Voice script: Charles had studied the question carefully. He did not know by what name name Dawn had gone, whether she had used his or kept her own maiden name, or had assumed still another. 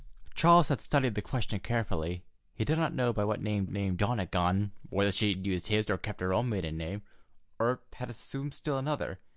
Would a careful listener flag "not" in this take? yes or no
no